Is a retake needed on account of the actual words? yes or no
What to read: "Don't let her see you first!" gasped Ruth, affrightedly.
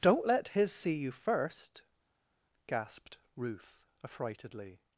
yes